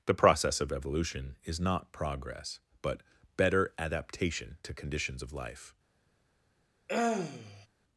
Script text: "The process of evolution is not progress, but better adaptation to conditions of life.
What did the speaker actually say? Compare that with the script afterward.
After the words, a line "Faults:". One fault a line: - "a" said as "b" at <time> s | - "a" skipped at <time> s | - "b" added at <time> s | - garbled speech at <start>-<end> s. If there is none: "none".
"The process of evolution is not progress, but better adaptation to conditions of life.
Faults:
none